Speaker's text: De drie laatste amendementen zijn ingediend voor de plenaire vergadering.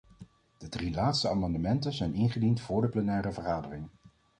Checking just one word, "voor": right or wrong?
right